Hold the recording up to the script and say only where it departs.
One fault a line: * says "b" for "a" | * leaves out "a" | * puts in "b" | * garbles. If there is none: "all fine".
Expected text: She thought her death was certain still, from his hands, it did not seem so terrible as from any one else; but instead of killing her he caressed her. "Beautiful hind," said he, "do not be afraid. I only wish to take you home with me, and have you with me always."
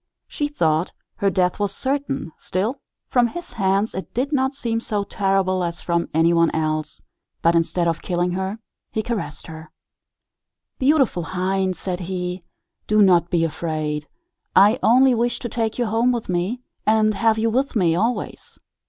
all fine